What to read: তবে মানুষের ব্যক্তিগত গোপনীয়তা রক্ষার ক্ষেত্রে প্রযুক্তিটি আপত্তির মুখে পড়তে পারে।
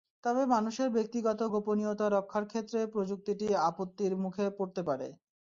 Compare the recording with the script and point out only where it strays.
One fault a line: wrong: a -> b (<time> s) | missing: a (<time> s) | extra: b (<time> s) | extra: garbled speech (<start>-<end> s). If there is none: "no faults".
no faults